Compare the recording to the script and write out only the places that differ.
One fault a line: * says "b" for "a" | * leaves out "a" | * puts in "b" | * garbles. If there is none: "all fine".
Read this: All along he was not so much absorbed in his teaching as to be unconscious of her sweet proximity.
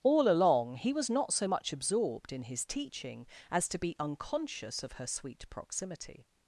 all fine